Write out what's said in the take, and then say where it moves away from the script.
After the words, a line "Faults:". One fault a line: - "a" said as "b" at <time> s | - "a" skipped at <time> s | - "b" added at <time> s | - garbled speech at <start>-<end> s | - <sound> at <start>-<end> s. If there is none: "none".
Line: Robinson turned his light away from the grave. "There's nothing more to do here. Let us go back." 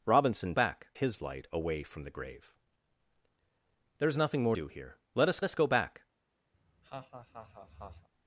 Robinson back his light away from the grave. "There's nothing more do here. Let us us go back."
Faults:
- "turned" said as "back" at 0.5 s
- "to" skipped at 4.5 s
- "us" added at 5.4 s
- laugh at 6.5-8.1 s